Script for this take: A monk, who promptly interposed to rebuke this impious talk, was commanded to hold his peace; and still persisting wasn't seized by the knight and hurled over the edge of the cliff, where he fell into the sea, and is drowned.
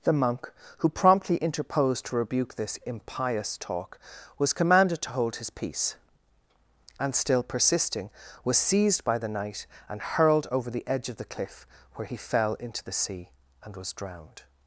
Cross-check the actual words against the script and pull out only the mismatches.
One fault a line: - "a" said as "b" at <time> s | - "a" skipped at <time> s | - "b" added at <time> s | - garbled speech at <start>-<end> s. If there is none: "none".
- "A" said as "The" at 0.0 s
- "wasn't" said as "was" at 8.4 s
- "is" said as "was" at 13.8 s